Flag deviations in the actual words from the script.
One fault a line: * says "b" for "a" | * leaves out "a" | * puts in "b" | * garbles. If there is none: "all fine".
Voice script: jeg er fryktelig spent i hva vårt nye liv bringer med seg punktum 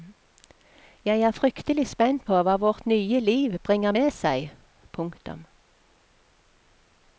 * says "på" for "i"